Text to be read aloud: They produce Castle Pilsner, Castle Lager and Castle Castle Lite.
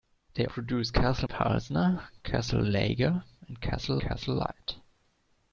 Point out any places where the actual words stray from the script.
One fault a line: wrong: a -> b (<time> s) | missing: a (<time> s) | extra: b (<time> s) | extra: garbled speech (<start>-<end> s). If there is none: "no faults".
no faults